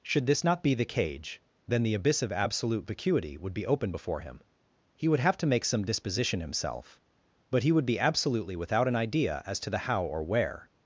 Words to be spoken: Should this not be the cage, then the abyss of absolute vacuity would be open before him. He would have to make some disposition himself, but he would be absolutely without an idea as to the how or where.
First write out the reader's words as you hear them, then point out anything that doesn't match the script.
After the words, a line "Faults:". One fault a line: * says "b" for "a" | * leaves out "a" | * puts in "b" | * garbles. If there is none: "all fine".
Should this not be the cage, then the abyss of absolute vacuity would be open before him. He would have to make some disposition himself, but he would be absolutely without an idea as to the how or where.
Faults:
all fine